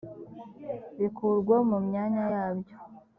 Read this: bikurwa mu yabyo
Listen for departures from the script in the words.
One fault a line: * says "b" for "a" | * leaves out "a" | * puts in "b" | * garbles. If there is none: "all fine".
* puts in "myanya"